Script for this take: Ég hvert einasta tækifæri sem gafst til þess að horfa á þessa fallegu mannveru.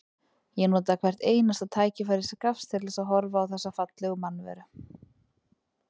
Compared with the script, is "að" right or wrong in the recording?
right